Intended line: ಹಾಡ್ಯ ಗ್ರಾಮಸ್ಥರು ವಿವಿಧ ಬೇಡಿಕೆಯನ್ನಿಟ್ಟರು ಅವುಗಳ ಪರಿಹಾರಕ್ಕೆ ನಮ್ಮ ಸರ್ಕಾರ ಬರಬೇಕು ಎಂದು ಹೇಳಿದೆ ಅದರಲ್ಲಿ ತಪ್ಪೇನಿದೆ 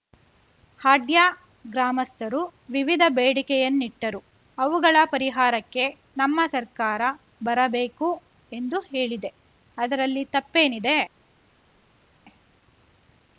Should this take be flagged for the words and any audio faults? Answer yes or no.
no